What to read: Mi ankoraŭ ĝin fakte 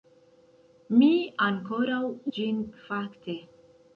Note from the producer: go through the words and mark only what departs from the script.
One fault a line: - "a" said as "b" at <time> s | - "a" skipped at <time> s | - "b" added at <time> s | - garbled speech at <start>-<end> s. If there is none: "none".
none